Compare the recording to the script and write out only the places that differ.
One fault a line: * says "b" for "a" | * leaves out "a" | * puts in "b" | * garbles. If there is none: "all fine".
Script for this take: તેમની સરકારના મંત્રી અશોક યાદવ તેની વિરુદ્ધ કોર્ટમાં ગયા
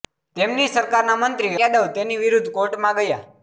* leaves out "અશોક"